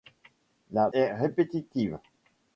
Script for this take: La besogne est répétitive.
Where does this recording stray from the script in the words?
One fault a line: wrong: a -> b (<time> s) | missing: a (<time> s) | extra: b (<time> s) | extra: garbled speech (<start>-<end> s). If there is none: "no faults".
missing: besogne (0.9 s)